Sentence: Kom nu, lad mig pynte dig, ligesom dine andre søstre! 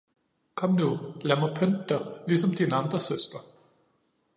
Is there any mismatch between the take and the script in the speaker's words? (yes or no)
no